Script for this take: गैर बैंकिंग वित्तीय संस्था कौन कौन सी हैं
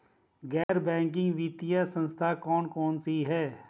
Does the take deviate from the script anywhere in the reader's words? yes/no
no